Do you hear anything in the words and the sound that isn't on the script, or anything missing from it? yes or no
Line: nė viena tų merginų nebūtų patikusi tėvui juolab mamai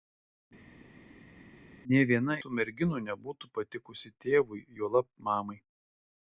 no